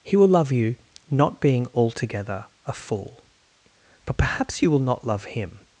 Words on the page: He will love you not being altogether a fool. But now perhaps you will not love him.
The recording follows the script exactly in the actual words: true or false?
false